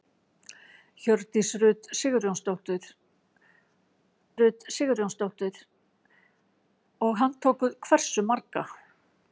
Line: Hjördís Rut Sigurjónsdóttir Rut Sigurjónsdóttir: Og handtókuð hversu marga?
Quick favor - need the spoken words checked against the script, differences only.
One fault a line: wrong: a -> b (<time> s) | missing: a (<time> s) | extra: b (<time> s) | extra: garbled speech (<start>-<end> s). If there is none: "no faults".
no faults